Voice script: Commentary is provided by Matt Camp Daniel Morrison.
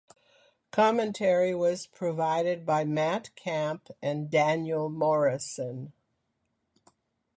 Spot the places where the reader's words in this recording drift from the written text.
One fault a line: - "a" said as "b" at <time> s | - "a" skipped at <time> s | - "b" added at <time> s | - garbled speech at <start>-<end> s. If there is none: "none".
- "is" said as "was" at 1.5 s
- "and" added at 4.0 s